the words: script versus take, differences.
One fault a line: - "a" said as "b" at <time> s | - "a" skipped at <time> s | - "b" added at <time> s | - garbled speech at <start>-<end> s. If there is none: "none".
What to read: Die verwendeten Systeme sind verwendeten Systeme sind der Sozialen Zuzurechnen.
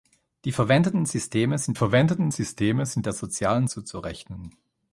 none